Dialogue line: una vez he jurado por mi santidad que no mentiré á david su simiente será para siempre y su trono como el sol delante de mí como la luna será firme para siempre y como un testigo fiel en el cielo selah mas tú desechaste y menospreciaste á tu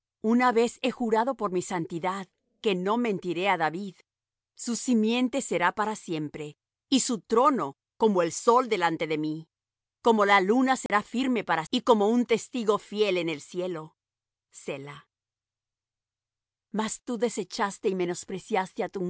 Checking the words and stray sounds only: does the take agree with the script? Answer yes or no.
no